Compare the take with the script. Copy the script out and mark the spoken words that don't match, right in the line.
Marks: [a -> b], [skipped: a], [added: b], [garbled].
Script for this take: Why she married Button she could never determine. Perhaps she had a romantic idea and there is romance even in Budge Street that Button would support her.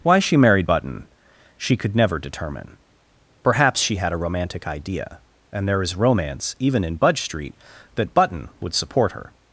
Why she married Button she could never determine. Perhaps she had a romantic idea and there is romance even in Budge Street that Button would support her.